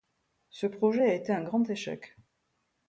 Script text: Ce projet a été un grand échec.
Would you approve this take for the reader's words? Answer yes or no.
yes